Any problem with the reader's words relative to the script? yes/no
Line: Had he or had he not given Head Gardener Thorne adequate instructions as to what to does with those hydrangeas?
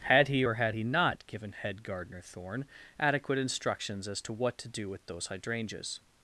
yes